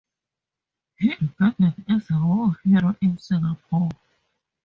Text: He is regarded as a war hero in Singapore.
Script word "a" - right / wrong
right